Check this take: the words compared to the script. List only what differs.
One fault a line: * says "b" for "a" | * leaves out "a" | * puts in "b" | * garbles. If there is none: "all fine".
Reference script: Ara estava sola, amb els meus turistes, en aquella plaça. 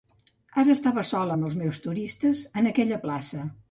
all fine